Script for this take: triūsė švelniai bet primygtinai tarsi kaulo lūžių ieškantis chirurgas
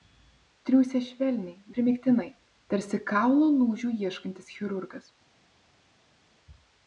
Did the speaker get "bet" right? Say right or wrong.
wrong